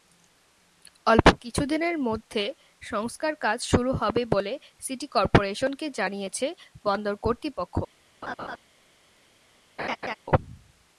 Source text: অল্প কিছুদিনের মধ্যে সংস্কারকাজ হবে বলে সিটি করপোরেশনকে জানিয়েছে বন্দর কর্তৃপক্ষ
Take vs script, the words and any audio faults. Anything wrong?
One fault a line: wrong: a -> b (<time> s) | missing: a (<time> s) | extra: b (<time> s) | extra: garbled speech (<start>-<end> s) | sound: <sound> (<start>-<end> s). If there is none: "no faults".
extra: শুরু (3.7 s)
sound: laugh (8.2-8.6 s)
sound: laugh (9.8-10.1 s)